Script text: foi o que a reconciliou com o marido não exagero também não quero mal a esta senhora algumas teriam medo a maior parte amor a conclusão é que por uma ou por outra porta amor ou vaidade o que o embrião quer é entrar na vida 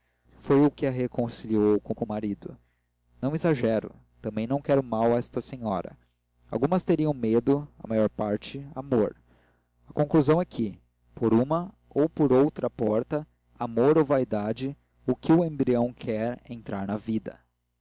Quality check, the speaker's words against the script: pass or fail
fail